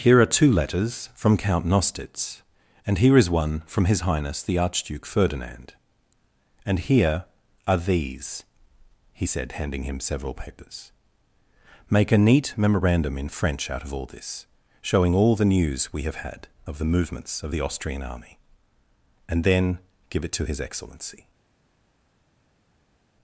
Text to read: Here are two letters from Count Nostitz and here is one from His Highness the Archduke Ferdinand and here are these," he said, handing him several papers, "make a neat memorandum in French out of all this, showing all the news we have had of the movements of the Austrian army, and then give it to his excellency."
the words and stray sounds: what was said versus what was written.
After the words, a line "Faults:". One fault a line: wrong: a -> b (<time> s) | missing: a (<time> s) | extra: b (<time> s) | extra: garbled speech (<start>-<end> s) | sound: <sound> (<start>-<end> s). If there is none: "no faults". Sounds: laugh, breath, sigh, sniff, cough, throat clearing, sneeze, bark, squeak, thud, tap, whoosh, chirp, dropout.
Here are two letters from Count Nostitz and here is one from His Highness the Archduke Ferdinand and here are these," he said, handing him several papers, "make a neat memorandum in French out of all this, showing all the news we have had of the movements of the Austrian army, and then give it to his excellency."
Faults:
no faults